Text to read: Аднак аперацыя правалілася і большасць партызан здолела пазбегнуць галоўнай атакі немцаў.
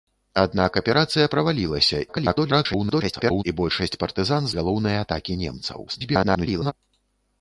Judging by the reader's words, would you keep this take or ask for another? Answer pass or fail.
fail